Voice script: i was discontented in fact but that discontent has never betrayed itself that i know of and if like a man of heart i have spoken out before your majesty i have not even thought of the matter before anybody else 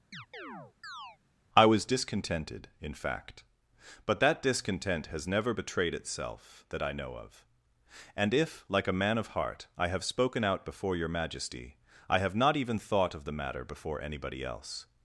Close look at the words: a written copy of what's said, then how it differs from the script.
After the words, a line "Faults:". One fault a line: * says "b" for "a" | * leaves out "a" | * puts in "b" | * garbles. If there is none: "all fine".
i was discontented in fact but that discontent has never betrayed itself that i know of and if like a man of heart i have spoken out before your majesty i have not even thought of the matter before anybody else
Faults:
all fine